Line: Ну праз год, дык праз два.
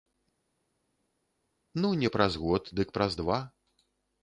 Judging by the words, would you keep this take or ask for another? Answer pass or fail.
fail